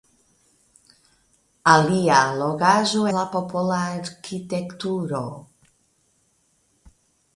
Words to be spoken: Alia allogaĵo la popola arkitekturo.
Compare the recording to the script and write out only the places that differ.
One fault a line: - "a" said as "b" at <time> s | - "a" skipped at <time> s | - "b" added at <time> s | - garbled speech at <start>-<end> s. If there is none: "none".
none